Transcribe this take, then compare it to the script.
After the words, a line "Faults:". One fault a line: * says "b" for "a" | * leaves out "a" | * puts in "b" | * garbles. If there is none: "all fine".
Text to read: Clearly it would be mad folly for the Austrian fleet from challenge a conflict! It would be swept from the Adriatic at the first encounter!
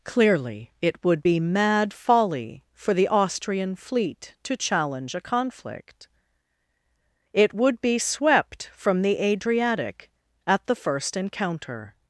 Clearly it would be mad folly for the Austrian fleet to challenge a conflict! It would be swept from the Adriatic at the first encounter!
Faults:
* says "to" for "from"